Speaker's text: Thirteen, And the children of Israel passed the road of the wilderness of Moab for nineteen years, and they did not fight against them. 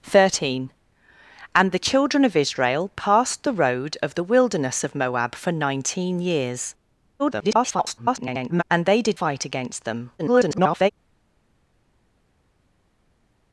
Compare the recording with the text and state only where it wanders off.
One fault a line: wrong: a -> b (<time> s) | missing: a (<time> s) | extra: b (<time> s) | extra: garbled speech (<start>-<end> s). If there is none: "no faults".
extra: garbled speech (7.2-8.6 s)
missing: not (9.2 s)
extra: garbled speech (10.2-10.9 s)